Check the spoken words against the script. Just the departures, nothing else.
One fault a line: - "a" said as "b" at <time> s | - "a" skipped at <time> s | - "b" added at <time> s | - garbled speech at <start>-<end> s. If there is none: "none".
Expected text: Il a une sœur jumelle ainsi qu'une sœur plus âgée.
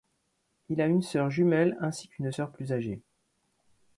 none